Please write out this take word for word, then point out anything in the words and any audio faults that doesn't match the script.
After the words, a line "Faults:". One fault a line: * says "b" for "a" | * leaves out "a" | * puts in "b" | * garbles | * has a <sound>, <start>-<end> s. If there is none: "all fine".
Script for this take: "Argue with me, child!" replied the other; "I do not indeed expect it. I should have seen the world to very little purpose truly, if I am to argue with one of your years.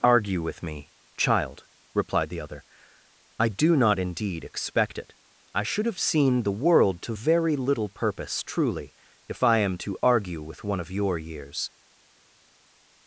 "Argue with me, child!" replied the other; "I do not indeed expect it. I should have seen the world to very little purpose truly, if I am to argue with one of your years.
Faults:
all fine